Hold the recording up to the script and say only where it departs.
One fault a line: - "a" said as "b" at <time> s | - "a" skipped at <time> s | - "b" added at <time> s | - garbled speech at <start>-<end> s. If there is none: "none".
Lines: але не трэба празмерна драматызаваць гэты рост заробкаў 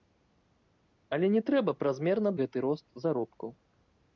- "драматызаваць" skipped at 2.3 s